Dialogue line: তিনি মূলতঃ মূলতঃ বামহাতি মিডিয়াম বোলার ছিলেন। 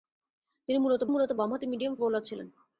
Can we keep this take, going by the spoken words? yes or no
yes